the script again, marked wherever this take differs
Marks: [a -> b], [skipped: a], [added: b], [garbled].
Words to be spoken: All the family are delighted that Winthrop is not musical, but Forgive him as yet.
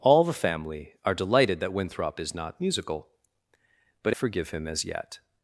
All the family are delighted that Winthrop is not musical, but Forgive him as yet.